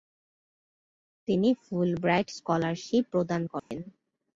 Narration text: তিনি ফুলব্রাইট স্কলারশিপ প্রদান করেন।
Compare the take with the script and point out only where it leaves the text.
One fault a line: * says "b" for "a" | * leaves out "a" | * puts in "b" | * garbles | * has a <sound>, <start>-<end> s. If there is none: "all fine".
* has a dropout, 3.6-3.7 s